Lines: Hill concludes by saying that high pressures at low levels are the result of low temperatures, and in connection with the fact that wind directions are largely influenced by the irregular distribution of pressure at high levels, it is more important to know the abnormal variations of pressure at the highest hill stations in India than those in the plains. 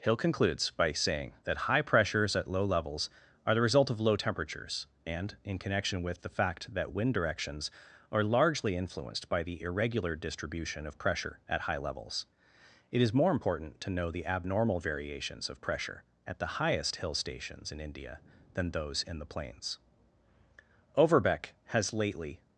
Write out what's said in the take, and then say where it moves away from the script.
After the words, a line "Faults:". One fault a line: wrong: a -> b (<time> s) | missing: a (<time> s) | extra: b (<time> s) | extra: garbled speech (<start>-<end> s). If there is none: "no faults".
Hill concludes by saying that high pressures at low levels are the result of low temperatures, and in connection with the fact that wind directions are largely influenced by the irregular distribution of pressure at high levels, it is more important to know the abnormal variations of pressure at the highest hill stations in India than those in the plains. Overbeck has lately
Faults:
extra: Overbeck has lately (21.0 s)